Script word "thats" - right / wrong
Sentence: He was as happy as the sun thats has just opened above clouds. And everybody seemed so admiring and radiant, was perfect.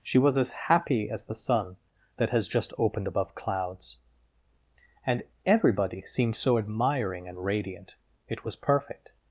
wrong